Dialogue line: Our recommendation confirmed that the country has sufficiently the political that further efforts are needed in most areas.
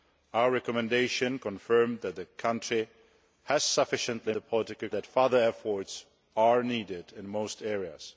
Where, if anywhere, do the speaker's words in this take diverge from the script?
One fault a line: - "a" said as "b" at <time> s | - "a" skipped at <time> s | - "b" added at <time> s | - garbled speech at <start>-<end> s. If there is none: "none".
none